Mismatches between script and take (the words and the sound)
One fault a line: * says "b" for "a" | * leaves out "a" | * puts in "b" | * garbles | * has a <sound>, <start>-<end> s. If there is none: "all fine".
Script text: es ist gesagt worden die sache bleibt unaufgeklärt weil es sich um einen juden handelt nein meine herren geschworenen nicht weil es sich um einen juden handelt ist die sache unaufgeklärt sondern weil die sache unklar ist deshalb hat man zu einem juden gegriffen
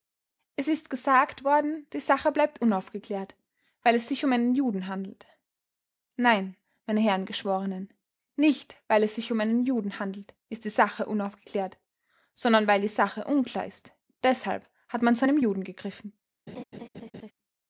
* has a laugh, 16.5-17.3 s